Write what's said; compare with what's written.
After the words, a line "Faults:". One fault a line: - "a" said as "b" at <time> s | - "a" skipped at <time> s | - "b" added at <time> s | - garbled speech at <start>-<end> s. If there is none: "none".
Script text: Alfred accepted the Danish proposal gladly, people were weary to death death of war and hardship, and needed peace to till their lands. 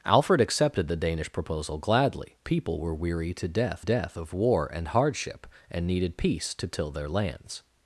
Alfred accepted the Danish proposal gladly, people were weary to death death of war and hardship, and needed peace to till their lands.
Faults:
none